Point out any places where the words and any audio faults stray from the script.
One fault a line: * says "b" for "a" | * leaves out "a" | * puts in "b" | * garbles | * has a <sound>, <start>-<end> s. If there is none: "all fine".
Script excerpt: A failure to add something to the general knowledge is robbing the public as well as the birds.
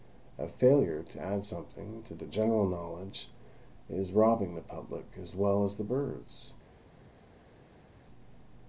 all fine